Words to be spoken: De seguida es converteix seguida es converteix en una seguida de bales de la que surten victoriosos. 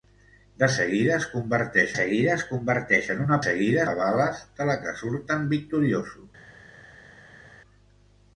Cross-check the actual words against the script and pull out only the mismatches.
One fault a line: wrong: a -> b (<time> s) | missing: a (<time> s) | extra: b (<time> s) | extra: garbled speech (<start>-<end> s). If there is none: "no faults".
no faults